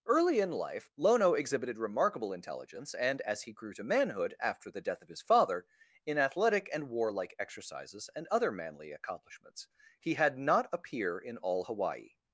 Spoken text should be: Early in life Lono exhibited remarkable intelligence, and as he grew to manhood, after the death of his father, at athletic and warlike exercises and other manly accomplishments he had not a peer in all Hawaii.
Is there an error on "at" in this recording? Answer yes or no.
yes